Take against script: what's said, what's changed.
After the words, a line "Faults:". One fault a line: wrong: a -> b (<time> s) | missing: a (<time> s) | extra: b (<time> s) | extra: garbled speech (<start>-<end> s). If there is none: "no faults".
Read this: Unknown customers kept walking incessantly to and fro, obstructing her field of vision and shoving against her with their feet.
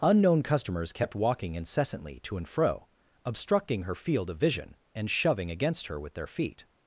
Unknown customers kept walking incessantly to and fro, obstructing her field of vision and shoving against her with their feet.
Faults:
no faults